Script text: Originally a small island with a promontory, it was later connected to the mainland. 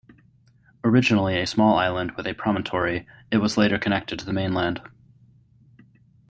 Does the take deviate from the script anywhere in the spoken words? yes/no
no